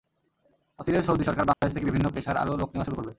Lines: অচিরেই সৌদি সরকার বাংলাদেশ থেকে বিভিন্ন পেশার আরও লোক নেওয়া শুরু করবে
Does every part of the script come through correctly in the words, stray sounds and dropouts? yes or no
no